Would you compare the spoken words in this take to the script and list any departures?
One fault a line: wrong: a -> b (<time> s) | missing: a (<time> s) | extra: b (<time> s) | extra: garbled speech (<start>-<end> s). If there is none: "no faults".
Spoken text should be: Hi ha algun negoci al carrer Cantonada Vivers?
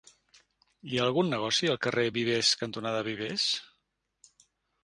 extra: Vivers (2.2 s)